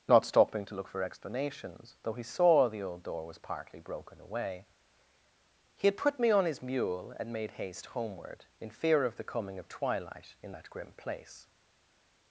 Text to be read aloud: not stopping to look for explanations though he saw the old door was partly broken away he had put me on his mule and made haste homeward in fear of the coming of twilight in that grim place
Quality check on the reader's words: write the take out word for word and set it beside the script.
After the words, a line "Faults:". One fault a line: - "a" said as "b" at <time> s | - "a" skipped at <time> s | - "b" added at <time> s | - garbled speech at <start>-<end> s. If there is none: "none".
not stopping to look for explanations though he saw the old door was partly broken away he had put me on his mule and made haste homeward in fear of the coming of twilight in that grim place
Faults:
none